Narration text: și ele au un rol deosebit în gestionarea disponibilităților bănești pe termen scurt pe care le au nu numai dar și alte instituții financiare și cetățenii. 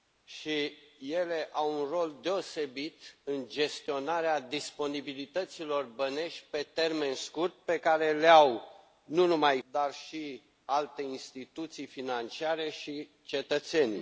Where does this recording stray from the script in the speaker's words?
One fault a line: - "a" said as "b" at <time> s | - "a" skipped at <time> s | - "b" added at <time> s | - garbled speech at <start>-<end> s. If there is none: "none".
none